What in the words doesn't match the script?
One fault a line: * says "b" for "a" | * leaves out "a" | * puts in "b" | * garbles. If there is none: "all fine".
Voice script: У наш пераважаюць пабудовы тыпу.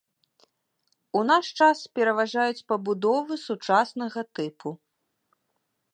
* puts in "час"
* puts in "сучаснага"